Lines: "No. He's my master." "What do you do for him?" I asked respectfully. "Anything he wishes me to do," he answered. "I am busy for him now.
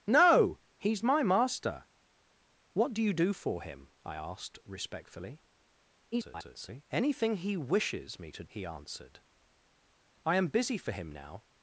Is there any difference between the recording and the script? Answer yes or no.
yes